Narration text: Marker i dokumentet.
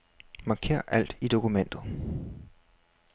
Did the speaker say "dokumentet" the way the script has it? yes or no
yes